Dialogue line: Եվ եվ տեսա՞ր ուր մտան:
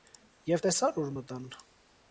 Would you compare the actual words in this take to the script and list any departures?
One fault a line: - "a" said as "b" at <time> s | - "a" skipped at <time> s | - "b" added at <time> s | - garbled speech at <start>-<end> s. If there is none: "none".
- "եվ" skipped at 0.6 s